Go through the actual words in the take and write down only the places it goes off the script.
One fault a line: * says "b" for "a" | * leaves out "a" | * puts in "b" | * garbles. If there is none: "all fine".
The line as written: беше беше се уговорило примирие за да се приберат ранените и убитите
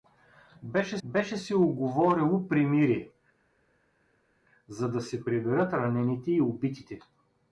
all fine